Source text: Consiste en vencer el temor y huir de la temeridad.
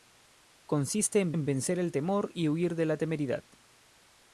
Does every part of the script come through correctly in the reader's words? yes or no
no